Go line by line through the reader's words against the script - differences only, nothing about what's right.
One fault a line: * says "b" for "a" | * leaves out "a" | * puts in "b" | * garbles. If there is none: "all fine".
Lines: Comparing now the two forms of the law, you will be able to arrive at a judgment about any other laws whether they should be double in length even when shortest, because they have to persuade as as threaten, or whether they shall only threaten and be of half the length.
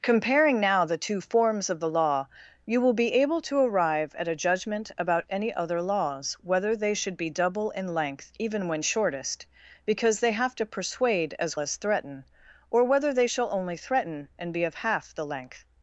all fine